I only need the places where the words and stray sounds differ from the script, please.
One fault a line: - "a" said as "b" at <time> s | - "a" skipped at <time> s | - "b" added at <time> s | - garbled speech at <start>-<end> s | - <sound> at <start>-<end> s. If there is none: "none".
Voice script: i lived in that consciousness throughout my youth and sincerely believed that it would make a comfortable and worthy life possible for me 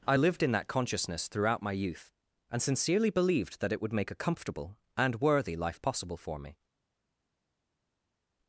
none